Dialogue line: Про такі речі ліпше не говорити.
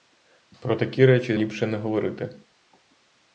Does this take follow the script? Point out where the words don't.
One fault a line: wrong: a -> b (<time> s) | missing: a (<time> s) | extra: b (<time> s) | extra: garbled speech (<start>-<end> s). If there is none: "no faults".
no faults